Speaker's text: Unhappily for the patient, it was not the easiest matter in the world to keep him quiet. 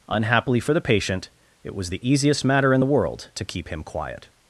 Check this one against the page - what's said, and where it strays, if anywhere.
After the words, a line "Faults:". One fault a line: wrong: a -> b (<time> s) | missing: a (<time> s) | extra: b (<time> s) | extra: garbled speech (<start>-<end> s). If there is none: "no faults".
Unhappily for the patient, it was the easiest matter in the world to keep him quiet.
Faults:
missing: not (1.9 s)